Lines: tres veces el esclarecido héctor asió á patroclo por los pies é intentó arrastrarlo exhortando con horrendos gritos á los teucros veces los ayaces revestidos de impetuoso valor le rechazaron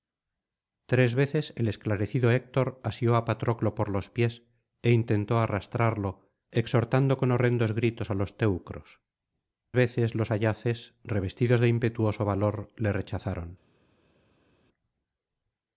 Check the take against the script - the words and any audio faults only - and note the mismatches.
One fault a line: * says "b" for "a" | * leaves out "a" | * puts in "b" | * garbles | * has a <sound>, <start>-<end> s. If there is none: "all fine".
all fine